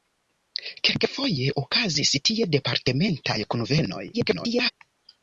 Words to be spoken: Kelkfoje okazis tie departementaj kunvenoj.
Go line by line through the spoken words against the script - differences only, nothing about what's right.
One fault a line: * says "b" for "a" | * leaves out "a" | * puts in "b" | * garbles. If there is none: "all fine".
* garbles